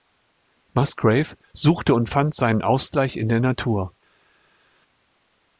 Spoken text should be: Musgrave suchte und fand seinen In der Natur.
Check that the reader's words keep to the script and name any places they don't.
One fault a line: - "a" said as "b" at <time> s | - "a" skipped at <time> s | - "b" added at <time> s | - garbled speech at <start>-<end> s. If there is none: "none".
- "Ausgleich" added at 2.6 s